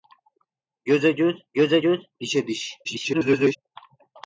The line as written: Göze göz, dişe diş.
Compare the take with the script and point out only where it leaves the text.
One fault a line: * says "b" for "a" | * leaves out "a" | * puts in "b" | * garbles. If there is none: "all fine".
* puts in "göze göz"
* garbles